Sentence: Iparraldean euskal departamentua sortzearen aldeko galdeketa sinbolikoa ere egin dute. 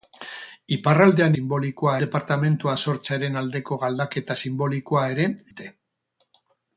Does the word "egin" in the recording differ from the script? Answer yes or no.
yes